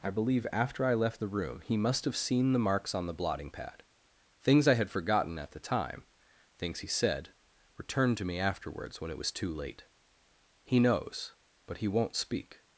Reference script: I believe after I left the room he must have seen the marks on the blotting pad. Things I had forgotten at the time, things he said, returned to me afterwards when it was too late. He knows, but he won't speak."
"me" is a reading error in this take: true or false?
false